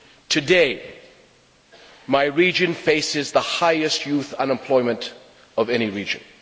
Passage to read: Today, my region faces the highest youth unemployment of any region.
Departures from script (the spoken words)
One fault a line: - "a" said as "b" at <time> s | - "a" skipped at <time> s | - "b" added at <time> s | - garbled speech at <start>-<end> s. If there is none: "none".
none